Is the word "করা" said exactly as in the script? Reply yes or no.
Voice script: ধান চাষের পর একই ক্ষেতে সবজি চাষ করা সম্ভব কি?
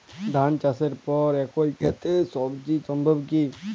no